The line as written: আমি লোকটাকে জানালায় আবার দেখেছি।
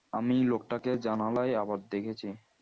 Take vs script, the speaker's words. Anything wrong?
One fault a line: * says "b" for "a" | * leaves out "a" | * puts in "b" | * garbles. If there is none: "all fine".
all fine